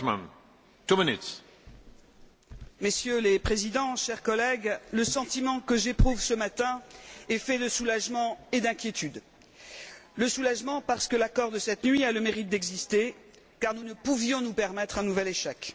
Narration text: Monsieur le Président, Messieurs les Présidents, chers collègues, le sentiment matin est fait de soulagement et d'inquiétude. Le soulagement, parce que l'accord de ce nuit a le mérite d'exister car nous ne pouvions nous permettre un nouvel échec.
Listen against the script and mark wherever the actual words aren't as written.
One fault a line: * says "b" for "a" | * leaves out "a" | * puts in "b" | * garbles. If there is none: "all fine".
* puts in "que j'éprouve ce"
* says "cette" for "ce"